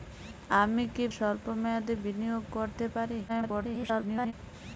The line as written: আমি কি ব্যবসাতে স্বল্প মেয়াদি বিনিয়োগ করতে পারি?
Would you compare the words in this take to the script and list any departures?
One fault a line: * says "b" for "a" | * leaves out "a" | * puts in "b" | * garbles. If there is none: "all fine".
* leaves out "ব্যবসাতে"
* garbles